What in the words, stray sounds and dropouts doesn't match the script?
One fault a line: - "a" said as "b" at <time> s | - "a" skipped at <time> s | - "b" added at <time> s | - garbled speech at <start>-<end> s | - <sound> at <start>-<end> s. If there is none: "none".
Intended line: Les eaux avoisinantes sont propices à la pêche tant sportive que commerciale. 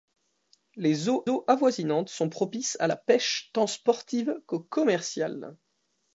- "eaux" added at 1.3 s